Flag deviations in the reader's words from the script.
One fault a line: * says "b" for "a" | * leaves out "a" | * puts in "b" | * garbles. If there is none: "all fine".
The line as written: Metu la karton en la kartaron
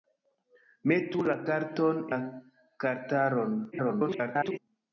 * leaves out "en"
* garbles